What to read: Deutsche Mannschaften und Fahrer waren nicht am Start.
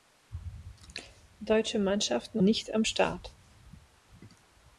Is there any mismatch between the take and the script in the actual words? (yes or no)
yes